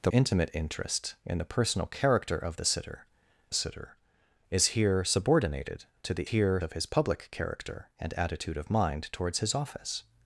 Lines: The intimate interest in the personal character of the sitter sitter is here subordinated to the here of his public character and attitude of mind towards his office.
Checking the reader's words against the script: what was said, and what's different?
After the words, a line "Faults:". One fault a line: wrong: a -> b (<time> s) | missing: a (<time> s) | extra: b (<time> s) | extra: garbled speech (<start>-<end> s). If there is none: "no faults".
The intimate interest in the personal character of the sitter sitter is here subordinated to the here of his public character and attitude of mind towards his office.
Faults:
no faults